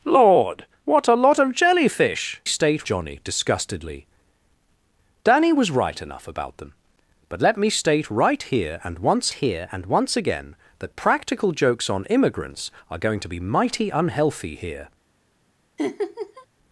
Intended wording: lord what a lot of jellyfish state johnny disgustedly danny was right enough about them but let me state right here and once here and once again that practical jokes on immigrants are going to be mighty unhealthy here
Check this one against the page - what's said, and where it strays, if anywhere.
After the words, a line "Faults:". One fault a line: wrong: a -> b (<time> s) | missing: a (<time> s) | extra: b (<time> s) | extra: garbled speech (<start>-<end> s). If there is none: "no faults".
lord what a lot of jellyfish state johnny disgustedly danny was right enough about them but let me state right here and once here and once again that practical jokes on immigrants are going to be mighty unhealthy here
Faults:
no faults